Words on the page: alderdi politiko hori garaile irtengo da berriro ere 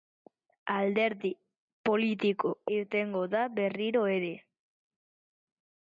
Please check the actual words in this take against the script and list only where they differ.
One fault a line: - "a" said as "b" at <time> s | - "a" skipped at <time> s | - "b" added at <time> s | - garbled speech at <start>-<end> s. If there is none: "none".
- "hori garaile" skipped at 2.5 s